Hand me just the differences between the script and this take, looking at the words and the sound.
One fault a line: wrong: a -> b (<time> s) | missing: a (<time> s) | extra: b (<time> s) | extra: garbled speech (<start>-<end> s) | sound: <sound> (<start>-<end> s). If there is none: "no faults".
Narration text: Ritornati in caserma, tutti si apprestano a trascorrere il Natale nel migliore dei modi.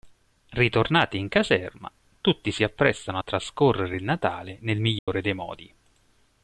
sound: dropout (5.0-5.1 s)